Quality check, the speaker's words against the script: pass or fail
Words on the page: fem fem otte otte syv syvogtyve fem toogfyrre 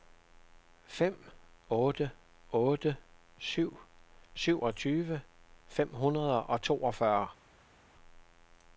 fail